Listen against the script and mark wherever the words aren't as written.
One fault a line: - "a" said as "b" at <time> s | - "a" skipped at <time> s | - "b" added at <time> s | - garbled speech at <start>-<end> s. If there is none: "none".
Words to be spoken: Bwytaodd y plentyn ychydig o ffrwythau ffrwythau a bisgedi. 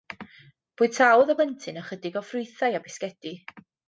- "ffrwythau" skipped at 2.8 s